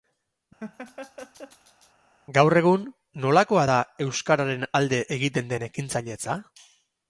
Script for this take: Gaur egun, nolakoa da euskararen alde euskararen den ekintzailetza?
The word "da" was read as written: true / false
true